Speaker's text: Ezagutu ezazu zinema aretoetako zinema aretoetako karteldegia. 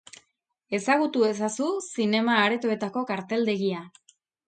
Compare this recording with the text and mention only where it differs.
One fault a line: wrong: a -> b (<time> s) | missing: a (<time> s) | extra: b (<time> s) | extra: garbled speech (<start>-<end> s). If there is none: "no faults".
missing: zinema aretoetako (3.0 s)